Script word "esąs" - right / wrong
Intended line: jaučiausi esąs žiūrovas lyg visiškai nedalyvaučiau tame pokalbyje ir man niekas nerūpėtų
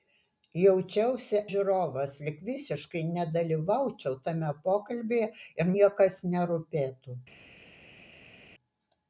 wrong